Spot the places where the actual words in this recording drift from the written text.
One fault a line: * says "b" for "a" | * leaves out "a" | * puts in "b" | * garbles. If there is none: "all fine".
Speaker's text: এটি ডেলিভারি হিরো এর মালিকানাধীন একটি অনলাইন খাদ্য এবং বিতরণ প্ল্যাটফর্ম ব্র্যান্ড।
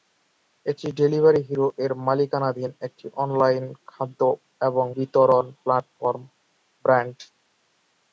all fine